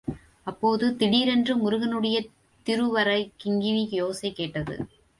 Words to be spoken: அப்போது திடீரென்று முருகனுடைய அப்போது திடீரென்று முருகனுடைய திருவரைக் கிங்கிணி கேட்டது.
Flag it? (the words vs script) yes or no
yes